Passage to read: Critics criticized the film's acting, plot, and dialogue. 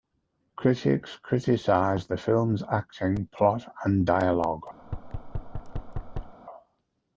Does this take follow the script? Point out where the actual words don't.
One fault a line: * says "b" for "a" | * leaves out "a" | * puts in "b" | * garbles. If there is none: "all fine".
all fine